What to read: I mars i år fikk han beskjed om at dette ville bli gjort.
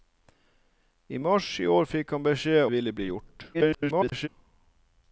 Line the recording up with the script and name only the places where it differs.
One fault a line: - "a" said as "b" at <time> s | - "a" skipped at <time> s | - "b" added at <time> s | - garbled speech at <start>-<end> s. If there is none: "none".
- "om at dette" skipped at 2.6 s
- garbled speech at 3.5-4.3 s